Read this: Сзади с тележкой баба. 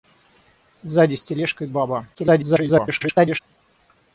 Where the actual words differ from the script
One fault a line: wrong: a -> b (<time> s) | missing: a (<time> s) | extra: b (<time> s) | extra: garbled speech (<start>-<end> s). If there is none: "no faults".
extra: garbled speech (2.1-3.4 s)